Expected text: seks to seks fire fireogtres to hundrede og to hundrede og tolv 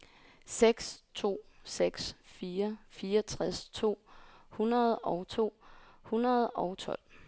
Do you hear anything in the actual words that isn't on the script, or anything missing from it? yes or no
no